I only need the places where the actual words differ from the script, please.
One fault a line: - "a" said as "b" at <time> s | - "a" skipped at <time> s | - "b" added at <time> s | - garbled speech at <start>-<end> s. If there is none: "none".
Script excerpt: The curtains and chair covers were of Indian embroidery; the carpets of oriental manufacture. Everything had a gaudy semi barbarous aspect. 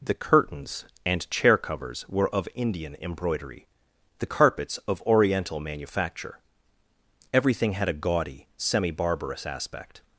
none